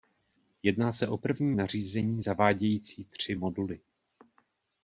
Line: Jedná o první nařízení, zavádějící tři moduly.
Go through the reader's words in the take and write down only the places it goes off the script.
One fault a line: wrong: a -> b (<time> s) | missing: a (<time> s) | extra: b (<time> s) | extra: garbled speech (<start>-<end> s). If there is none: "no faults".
extra: se (0.9 s)